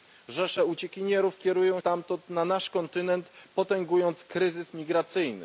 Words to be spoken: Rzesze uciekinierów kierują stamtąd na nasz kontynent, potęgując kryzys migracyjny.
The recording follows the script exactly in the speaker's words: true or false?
true